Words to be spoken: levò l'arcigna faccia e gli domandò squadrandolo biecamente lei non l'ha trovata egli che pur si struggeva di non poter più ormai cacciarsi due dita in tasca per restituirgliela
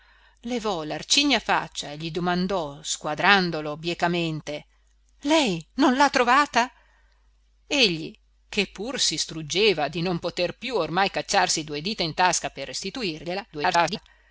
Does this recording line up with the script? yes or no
no